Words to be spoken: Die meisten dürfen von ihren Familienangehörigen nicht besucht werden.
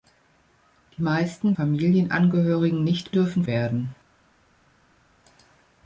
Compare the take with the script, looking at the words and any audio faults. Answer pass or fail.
fail